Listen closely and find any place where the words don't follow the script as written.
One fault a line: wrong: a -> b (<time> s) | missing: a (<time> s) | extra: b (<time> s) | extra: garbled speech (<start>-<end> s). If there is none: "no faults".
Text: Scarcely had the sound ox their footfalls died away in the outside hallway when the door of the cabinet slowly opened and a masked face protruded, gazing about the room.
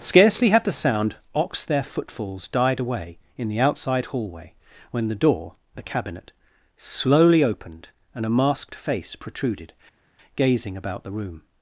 missing: of (5.5 s)